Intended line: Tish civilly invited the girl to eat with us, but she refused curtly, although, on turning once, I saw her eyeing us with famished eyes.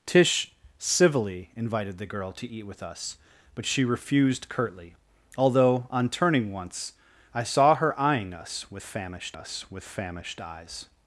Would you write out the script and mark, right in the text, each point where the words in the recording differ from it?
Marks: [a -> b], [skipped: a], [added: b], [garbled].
Tish civilly invited the girl to eat with us, but she refused curtly, although, on turning once, I saw her eyeing us with famished [added: us with famished] eyes.